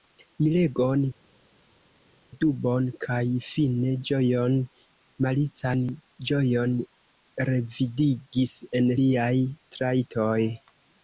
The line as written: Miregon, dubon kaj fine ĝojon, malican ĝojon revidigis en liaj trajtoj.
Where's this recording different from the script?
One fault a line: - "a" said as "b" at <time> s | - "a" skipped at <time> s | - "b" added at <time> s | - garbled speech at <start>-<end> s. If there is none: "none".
none